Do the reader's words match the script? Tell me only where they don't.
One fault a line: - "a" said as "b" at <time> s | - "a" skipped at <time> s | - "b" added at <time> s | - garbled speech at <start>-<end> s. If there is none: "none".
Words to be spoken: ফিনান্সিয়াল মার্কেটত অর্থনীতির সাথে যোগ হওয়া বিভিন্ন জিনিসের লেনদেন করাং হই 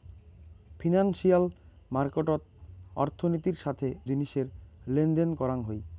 - "যোগ হওয়া বিভিন্ন" skipped at 3.9 s